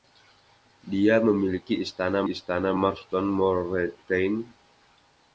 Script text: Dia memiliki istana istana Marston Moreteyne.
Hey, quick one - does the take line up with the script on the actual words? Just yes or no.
yes